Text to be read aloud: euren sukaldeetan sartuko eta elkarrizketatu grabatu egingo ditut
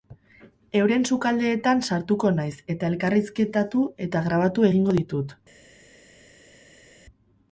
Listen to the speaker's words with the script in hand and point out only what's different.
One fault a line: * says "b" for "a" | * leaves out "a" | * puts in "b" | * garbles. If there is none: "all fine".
* puts in "naiz"
* puts in "eta"